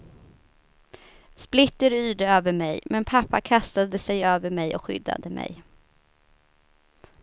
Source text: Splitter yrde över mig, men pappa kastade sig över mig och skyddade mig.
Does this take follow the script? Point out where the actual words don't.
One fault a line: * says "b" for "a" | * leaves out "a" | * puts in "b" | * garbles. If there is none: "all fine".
all fine